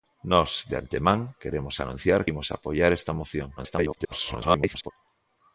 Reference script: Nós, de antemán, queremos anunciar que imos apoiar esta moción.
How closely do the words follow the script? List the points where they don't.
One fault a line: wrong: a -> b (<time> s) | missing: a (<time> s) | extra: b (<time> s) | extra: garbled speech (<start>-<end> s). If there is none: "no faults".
missing: que (2.2 s)
extra: garbled speech (3.6-4.9 s)